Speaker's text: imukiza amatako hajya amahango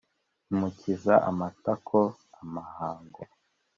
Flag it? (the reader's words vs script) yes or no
yes